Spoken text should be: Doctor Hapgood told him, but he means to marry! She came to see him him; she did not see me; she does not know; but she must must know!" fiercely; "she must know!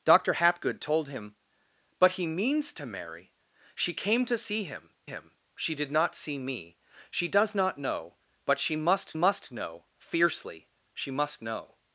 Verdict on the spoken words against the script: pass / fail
pass